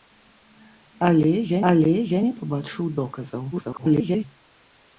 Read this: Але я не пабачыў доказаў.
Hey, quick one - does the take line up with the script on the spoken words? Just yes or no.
no